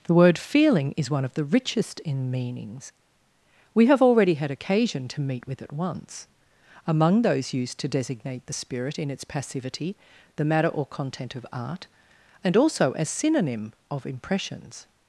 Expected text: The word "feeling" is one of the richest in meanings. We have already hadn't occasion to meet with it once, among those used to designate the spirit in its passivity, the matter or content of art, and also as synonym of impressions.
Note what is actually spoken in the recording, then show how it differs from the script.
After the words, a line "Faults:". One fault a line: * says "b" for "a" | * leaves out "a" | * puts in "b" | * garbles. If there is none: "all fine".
The word "feeling" is one of the richest in meanings. We have already had occasion to meet with it once, among those used to designate the spirit in its passivity, the matter or content of art, and also as synonym of impressions.
Faults:
* says "had" for "hadn't"